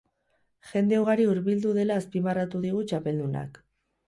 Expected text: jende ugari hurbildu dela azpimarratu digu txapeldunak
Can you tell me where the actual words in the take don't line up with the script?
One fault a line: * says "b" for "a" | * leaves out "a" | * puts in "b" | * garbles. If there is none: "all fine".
all fine